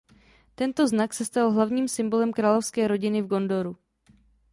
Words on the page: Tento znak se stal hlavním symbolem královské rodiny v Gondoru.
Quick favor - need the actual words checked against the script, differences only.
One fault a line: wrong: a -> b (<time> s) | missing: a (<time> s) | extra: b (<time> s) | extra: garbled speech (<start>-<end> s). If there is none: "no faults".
no faults